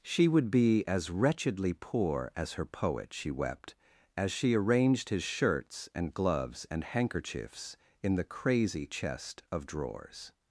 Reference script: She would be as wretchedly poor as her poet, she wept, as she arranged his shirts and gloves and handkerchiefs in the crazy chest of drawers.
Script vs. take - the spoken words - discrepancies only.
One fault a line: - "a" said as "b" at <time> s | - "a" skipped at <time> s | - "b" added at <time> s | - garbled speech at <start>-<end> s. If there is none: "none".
none